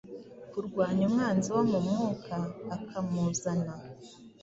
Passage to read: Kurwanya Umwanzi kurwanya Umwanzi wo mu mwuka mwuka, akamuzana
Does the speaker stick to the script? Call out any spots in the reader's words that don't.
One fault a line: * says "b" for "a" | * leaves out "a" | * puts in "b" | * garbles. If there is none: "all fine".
* leaves out "kurwanya Umwanzi"
* leaves out "mwuka"